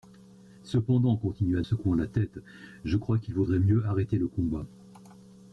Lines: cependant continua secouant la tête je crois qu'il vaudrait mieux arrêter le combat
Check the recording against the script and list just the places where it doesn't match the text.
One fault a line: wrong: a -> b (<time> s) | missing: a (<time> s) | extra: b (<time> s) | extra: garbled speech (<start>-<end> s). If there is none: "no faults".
no faults